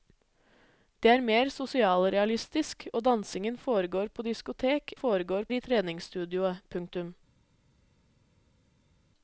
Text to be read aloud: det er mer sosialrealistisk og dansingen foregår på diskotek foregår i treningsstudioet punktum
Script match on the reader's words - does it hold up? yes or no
yes